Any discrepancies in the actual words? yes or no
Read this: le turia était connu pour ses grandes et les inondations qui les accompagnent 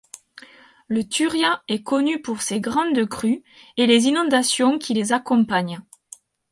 yes